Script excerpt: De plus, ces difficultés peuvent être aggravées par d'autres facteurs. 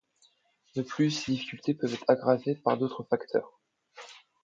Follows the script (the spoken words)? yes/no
yes